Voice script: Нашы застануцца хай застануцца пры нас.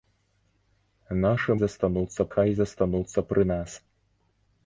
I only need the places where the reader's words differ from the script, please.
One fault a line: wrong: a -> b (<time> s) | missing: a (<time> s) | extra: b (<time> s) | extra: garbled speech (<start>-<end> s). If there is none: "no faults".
no faults